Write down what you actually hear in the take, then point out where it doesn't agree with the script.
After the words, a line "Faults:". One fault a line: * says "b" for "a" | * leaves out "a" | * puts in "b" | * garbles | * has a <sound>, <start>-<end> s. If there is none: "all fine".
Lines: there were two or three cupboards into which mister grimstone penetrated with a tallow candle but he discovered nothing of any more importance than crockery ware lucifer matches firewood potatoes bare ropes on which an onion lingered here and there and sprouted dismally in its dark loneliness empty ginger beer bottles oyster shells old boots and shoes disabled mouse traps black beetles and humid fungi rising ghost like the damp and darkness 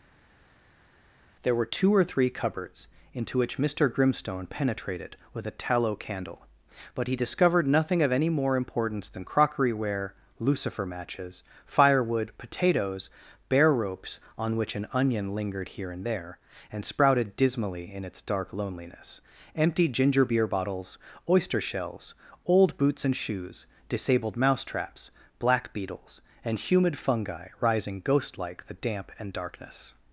there were two or three cupboards into which mister grimstone penetrated with a tallow candle but he discovered nothing of any more importance than crockery ware lucifer matches firewood potatoes bare ropes on which an onion lingered here and there and sprouted dismally in its dark loneliness empty ginger beer bottles oyster shells old boots and shoes disabled mouse traps black beetles and humid fungi rising ghost like the damp and darkness
Faults:
all fine